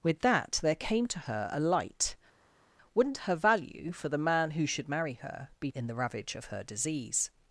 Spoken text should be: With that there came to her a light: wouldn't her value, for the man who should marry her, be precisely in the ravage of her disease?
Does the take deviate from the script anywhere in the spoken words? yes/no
yes